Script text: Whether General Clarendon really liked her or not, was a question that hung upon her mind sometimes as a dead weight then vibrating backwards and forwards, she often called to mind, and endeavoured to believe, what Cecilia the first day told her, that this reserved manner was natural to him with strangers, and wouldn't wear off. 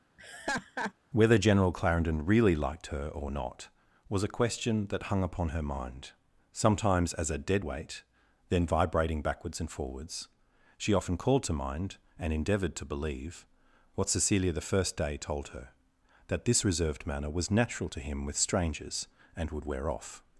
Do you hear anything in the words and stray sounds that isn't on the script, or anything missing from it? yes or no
yes